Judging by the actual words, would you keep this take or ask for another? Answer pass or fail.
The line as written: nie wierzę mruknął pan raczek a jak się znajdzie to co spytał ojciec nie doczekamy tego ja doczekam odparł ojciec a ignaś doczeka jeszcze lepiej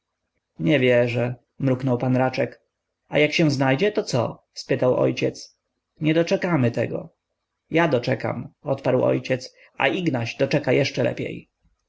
pass